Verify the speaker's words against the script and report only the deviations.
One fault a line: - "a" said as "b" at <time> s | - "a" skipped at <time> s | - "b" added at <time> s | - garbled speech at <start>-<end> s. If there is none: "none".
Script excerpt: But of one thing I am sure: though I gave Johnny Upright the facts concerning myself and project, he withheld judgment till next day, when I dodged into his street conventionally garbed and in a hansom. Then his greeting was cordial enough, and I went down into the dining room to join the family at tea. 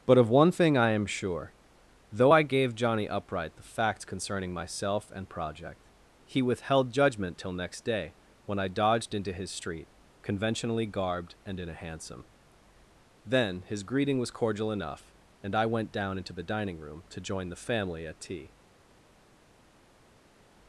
none